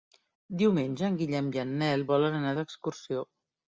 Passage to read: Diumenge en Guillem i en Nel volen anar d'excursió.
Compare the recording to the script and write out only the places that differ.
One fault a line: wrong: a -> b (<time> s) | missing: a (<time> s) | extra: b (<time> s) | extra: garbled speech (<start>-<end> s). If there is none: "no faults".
no faults